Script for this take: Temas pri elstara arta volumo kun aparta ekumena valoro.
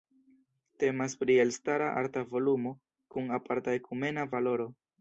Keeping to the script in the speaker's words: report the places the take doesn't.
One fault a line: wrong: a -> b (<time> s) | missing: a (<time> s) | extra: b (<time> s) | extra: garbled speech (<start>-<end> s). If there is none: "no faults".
no faults